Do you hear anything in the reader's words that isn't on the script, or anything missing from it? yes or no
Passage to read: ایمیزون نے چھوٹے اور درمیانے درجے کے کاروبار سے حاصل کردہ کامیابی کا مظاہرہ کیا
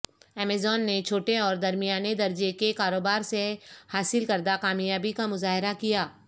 no